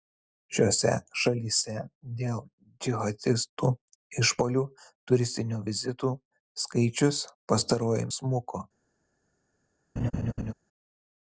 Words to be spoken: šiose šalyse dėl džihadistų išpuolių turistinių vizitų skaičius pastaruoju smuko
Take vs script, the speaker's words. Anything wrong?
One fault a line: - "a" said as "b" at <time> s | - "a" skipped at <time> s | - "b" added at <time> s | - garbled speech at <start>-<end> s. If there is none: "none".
none